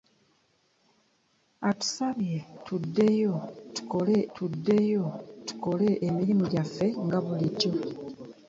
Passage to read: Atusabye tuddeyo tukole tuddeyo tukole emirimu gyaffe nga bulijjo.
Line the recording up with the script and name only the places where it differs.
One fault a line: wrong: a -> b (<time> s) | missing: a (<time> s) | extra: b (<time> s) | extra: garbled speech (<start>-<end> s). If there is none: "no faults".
no faults